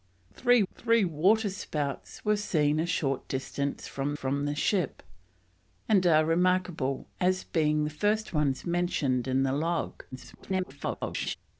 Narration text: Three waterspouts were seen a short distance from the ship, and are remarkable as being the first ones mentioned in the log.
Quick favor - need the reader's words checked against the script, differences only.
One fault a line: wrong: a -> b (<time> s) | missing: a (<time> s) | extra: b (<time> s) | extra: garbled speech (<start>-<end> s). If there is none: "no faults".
extra: three (0.7 s)
extra: from (4.1 s)
extra: garbled speech (10.1-11.4 s)